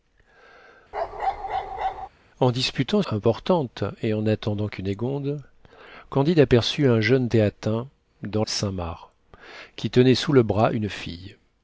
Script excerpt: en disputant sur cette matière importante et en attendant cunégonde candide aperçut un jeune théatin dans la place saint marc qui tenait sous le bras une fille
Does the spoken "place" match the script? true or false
false